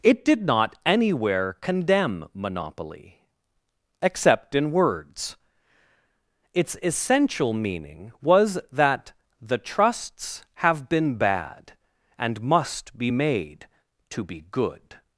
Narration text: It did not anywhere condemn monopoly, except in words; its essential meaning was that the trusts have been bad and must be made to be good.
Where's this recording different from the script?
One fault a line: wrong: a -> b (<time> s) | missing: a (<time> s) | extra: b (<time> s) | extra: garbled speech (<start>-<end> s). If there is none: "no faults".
no faults